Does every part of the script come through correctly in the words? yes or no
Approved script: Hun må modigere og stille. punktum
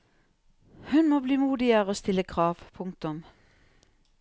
no